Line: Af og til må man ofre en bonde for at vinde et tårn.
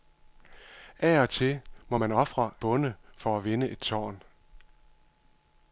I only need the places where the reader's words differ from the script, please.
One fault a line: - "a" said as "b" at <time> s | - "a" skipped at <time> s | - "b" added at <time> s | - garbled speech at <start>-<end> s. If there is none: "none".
- "en" skipped at 2.5 s